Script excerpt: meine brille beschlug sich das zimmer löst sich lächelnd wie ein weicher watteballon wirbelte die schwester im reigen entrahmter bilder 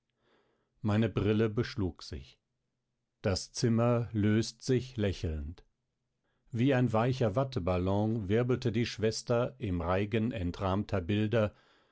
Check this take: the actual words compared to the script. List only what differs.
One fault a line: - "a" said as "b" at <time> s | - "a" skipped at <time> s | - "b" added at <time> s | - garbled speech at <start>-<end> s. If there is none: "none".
none